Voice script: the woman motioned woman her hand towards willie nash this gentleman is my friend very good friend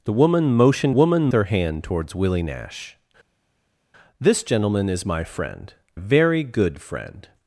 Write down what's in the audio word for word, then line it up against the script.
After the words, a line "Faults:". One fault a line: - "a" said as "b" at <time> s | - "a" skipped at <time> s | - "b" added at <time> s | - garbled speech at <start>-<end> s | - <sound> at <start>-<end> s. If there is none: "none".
the woman motioned woman her hand towards willie nash this gentleman is my friend very good friend
Faults:
none